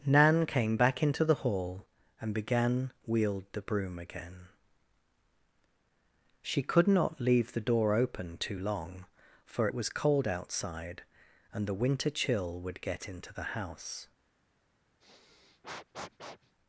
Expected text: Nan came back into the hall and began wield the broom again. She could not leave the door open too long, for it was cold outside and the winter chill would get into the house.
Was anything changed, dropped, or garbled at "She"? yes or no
no